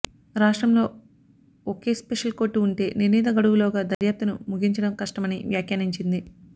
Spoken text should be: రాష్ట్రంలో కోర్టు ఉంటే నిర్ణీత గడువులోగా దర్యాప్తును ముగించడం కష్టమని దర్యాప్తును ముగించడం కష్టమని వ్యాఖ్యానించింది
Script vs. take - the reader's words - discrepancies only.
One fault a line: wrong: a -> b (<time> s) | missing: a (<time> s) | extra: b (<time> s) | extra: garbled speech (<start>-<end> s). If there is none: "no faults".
extra: ఒకే స్పెషల్ (1.7 s)
missing: దర్యాప్తును ముగించడం కష్టమని (5.4 s)